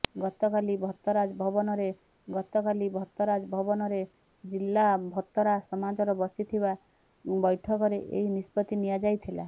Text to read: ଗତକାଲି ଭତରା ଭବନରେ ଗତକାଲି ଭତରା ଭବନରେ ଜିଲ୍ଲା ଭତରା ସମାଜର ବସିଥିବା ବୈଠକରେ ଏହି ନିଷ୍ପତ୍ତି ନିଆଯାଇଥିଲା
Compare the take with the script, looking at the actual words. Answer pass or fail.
pass